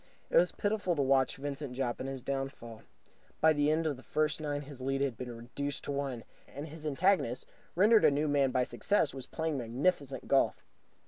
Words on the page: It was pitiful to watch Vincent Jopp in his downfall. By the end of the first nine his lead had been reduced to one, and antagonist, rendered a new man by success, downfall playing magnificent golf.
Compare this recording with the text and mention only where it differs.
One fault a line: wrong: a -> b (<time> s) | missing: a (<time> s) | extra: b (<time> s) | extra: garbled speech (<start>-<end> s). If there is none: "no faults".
extra: his (6.7 s)
wrong: downfall -> was (9.1 s)